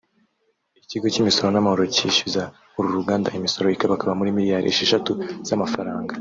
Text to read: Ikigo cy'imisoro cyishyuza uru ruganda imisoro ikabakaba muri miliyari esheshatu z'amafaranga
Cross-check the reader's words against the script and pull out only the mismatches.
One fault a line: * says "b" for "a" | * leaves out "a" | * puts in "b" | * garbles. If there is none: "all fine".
* puts in "n'amahoro"